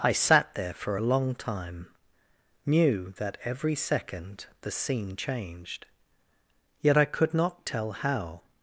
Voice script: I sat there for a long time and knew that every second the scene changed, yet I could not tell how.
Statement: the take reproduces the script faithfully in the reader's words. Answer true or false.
false